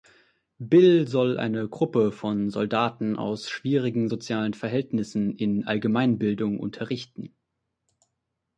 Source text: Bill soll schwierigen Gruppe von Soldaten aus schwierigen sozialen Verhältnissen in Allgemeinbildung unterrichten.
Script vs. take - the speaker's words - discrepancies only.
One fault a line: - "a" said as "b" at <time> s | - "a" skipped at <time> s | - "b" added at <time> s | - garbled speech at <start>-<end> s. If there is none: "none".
- "schwierigen" said as "eine" at 1.4 s